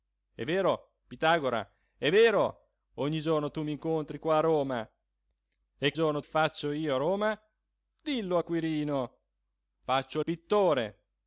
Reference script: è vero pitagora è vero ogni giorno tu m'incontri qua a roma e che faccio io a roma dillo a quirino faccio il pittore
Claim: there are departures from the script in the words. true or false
true